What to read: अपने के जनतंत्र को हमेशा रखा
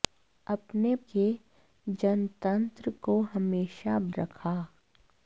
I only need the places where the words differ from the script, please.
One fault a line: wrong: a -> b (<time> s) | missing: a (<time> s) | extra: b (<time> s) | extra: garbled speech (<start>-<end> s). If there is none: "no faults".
no faults